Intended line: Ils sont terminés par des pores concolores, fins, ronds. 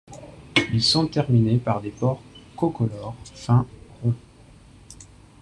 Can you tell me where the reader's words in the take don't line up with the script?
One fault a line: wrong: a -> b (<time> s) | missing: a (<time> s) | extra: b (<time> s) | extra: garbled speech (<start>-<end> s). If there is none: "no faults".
no faults